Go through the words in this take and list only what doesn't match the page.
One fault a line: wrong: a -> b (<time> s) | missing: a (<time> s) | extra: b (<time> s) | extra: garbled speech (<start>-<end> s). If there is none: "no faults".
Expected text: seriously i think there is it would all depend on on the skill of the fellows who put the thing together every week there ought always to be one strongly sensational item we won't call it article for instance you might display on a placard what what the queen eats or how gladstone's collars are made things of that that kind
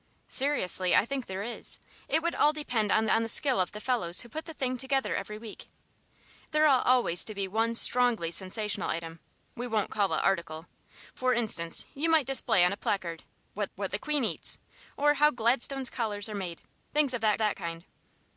no faults